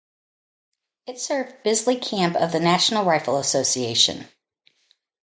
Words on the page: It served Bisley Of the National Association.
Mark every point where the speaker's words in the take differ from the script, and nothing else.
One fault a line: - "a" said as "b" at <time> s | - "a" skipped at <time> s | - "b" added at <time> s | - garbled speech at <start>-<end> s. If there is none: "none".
- "Camp" added at 1.9 s
- "Rifle" added at 3.0 s